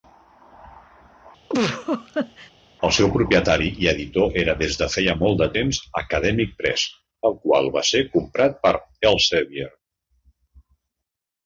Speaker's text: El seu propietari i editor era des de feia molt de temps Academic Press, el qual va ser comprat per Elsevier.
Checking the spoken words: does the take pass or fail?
pass